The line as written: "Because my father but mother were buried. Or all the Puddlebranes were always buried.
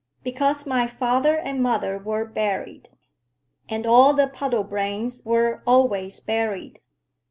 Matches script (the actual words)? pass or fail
fail